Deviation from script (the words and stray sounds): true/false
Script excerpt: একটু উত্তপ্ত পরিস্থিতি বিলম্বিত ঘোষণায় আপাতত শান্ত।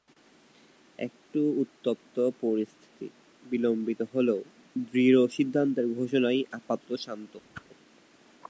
true